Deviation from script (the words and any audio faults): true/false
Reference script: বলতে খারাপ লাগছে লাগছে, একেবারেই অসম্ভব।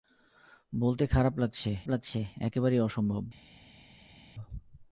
false